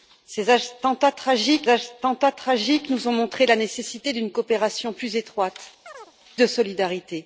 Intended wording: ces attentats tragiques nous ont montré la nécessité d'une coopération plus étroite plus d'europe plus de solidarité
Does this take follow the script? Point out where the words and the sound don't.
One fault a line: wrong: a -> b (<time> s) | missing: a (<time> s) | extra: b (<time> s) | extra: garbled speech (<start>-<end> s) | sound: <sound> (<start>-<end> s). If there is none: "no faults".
extra: attentats tragiques (1.7 s)
missing: plus d'europe plus (5.6 s)
sound: chirp (5.9-6.1 s)